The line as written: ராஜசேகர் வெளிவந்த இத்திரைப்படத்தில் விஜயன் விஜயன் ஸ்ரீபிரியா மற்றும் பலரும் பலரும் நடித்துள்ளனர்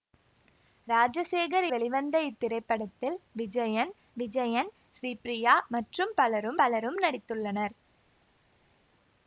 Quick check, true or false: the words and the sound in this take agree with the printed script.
true